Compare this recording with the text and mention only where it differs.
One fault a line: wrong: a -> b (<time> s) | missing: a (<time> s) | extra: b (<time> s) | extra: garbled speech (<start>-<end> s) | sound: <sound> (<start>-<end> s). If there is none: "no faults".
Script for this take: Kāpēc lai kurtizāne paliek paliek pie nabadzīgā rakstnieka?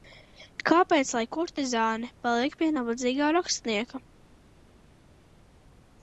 missing: paliek (2.6 s)